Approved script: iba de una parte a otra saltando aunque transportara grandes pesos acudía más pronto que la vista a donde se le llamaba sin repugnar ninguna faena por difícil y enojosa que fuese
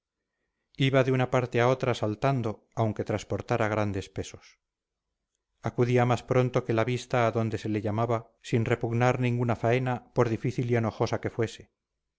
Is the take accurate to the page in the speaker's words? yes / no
yes